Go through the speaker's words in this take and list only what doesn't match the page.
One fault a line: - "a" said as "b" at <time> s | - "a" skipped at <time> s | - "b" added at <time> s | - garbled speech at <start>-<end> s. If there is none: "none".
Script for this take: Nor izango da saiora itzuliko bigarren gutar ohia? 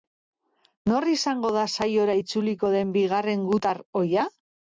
- "den" added at 2.8 s